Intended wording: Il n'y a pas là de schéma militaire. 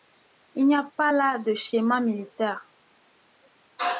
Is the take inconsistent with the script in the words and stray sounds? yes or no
no